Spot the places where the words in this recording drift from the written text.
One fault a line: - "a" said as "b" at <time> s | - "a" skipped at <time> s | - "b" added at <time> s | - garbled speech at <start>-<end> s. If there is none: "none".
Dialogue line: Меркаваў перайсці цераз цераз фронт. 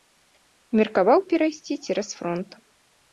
- "цераз" skipped at 2.1 s